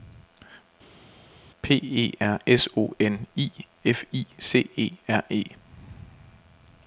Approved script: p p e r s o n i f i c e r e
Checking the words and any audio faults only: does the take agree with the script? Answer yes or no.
no